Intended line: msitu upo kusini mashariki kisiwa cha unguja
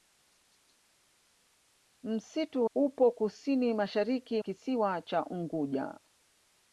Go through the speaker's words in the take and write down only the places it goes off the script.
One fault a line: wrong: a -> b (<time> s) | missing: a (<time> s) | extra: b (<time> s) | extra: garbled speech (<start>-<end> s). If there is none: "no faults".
no faults